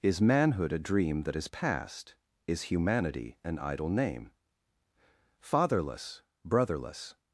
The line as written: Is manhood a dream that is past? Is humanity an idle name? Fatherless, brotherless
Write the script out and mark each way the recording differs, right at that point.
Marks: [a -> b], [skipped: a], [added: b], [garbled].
Is manhood a dream that is past? Is humanity an idle name? Fatherless, brotherless